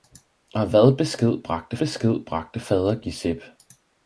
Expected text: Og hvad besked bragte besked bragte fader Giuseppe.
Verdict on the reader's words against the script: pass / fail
pass